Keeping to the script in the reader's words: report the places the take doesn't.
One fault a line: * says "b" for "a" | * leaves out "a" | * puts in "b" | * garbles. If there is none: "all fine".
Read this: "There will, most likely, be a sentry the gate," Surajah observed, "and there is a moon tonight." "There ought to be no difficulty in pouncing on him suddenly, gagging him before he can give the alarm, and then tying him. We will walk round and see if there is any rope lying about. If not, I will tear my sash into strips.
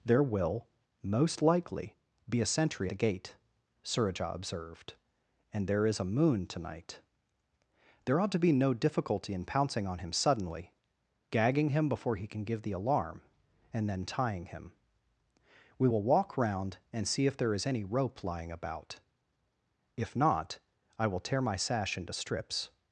all fine